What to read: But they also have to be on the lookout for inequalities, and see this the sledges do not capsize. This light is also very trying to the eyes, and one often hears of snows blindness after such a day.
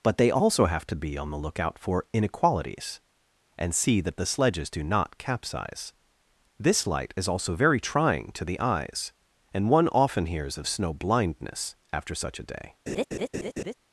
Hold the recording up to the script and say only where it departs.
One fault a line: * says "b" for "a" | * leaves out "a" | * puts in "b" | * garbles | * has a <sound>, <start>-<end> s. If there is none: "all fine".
* says "that" for "this"
* says "snow" for "snows"
* has a laugh, 12.9-13.7 s